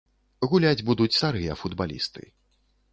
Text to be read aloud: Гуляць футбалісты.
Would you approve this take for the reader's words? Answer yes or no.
no